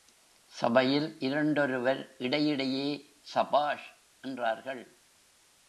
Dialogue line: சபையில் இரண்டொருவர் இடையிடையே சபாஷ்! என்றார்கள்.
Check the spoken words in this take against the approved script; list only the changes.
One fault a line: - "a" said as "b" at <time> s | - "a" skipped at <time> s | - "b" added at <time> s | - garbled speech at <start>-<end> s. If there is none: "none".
none